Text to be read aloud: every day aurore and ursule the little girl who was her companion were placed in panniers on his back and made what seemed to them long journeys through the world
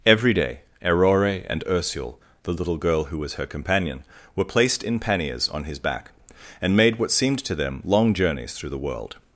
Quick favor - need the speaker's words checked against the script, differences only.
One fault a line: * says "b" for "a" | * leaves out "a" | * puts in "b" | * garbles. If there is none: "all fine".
all fine